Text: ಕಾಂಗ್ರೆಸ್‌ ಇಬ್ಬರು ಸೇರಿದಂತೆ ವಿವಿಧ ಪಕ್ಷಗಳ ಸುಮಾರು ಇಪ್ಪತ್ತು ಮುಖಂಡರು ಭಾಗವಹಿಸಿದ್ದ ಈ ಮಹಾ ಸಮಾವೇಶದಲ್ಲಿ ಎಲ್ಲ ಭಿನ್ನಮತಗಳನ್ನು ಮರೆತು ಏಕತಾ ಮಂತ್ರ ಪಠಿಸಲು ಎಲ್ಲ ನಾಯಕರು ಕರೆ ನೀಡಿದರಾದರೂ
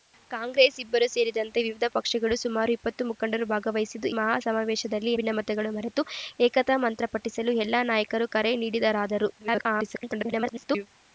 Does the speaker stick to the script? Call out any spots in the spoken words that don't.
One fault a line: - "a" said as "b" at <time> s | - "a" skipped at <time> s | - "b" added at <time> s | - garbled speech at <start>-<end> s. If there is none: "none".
- "ಈ" skipped at 4.1 s
- "ಎಲ್ಲ" skipped at 5.1 s
- garbled speech at 9.4-10.9 s